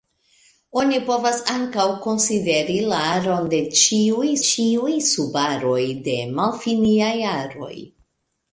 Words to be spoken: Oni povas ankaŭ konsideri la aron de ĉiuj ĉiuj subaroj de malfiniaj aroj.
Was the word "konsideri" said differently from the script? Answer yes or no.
no